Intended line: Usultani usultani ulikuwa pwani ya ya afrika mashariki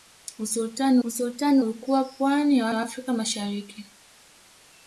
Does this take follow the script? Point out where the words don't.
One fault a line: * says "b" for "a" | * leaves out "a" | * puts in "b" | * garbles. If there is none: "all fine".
all fine